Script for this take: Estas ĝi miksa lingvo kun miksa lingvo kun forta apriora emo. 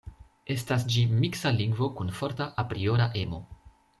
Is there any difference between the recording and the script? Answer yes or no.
yes